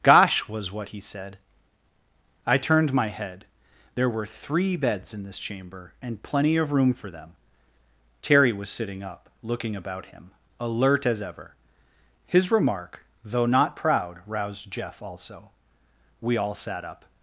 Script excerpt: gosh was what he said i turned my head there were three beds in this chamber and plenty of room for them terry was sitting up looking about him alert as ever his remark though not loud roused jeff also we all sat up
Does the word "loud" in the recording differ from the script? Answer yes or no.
yes